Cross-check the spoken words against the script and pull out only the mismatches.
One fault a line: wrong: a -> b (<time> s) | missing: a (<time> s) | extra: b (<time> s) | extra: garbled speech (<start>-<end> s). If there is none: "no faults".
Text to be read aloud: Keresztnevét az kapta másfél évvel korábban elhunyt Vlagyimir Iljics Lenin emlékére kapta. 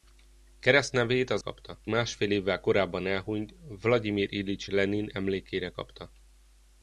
no faults